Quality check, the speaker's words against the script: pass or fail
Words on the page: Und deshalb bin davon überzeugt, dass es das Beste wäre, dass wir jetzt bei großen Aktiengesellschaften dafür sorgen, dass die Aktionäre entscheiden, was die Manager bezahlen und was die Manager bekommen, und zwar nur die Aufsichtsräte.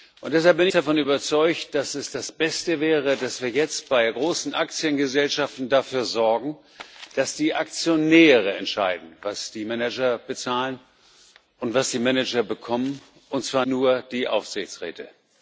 pass